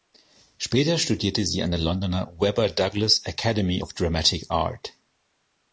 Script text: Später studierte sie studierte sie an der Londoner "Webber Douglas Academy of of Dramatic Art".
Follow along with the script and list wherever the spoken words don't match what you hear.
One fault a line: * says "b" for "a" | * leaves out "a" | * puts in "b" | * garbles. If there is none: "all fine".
* leaves out "studierte sie"
* leaves out "of"